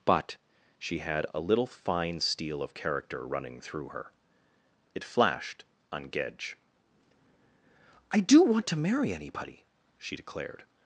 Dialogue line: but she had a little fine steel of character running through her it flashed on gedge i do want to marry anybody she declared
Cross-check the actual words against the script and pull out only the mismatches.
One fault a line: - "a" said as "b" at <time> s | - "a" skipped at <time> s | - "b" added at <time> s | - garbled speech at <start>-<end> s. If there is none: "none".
none